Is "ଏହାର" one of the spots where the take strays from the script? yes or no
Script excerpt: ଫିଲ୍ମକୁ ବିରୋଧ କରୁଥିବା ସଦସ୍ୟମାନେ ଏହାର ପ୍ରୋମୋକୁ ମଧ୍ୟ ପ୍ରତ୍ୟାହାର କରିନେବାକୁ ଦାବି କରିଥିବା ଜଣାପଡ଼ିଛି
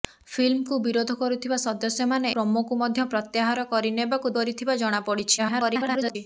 yes